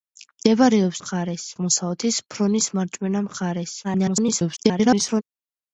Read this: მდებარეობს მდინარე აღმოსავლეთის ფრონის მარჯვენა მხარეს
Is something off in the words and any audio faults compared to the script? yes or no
yes